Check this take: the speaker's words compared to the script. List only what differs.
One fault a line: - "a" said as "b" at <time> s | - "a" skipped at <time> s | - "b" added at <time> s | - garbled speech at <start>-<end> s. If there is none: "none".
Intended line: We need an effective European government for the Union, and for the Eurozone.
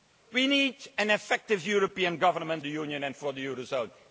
- "for" skipped at 2.6 s